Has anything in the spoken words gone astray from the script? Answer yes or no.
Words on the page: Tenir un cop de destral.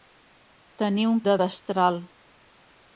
yes